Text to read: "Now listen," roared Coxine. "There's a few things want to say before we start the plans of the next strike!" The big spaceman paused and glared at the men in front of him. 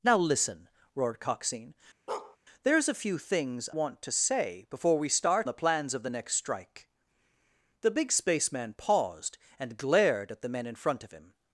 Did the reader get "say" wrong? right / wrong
right